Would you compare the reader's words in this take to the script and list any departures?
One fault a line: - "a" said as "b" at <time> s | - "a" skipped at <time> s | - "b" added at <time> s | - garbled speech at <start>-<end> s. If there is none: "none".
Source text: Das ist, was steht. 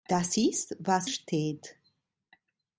none